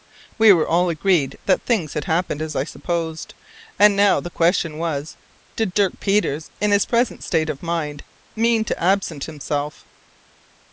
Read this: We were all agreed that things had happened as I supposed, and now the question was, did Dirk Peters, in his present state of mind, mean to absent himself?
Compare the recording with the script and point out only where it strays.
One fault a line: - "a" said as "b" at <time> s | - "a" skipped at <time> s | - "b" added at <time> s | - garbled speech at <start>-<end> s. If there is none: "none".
none